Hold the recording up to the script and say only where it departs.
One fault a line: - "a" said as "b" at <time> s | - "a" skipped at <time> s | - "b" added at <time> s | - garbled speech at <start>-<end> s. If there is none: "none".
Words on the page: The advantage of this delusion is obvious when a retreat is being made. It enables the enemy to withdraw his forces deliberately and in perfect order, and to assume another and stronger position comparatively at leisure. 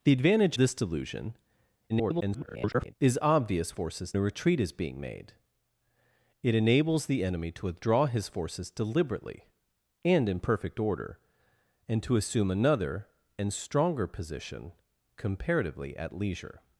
- "of" skipped at 0.6 s
- garbled speech at 1.9-3.0 s
- "when" said as "forces" at 3.7 s